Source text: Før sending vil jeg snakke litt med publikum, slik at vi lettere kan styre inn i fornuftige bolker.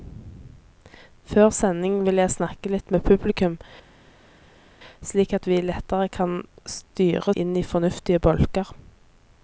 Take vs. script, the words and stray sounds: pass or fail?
pass